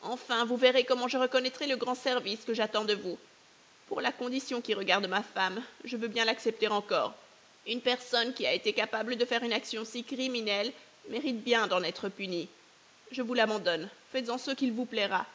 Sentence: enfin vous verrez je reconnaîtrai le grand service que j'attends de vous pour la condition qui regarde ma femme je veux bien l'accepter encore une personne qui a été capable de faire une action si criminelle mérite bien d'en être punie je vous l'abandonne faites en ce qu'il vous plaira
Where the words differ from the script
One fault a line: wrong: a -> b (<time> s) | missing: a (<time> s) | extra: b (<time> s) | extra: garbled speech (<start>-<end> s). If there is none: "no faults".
extra: comment (0.8 s)